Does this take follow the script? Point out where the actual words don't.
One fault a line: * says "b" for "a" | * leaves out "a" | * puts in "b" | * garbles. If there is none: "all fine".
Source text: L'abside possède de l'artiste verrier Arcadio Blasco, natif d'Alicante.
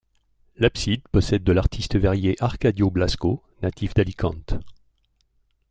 all fine